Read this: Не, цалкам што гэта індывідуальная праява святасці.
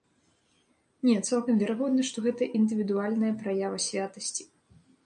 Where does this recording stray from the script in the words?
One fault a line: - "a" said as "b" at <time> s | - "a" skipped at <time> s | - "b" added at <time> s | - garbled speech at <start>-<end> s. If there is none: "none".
- "верагодна" added at 1.6 s